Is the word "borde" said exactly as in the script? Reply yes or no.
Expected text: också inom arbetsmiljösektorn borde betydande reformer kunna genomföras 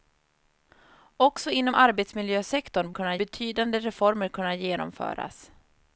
no